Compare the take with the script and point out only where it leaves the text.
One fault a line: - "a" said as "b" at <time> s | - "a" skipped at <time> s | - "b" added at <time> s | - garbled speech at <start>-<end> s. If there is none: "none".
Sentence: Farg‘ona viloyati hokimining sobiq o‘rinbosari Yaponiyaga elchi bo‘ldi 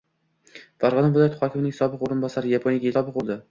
- "elchi" said as "sobiq" at 3.0 s